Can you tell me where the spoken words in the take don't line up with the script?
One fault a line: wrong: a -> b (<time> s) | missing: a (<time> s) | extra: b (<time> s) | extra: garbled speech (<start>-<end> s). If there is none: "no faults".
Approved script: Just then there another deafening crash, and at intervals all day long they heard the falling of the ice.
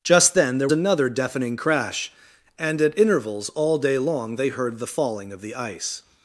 no faults